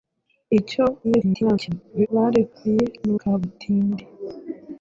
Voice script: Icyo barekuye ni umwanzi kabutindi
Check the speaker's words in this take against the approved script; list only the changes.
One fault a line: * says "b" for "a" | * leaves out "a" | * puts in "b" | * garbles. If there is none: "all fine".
* garbles
* leaves out "umwanzi"